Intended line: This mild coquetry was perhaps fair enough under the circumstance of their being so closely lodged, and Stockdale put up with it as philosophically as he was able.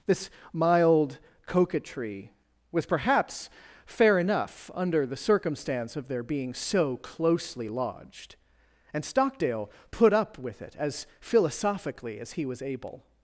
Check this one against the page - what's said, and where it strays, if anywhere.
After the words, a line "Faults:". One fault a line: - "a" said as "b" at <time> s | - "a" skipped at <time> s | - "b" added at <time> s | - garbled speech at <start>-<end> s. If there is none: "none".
This mild coquetry was perhaps fair enough under the circumstance of their being so closely lodged, and Stockdale put up with it as philosophically as he was able.
Faults:
none